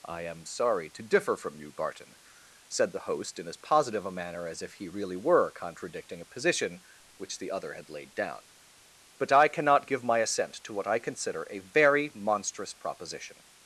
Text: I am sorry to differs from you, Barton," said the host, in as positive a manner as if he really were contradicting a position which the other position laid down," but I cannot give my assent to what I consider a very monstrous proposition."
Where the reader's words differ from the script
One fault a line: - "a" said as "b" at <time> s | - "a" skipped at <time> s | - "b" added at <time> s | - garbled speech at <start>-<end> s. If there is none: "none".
- "differs" said as "differ" at 1.0 s
- "position" said as "had" at 7.7 s